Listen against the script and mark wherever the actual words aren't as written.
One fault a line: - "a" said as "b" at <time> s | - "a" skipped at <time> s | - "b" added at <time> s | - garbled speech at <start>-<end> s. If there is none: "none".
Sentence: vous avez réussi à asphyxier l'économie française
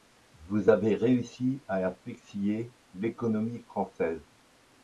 none